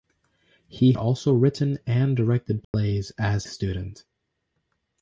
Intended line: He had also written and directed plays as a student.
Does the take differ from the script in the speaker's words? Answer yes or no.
yes